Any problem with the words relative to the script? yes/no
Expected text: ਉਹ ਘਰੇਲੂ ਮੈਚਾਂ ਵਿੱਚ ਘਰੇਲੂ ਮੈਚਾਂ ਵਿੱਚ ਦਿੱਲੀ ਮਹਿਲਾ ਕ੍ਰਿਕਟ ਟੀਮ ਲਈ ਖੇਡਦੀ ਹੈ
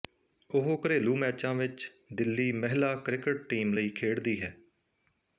yes